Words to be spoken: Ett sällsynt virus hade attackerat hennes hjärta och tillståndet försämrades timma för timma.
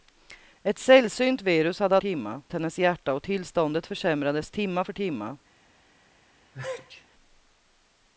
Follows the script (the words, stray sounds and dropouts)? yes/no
no